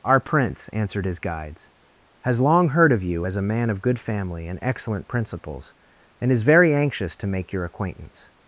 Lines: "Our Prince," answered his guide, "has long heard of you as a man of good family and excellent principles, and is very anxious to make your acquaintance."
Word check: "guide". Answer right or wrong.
wrong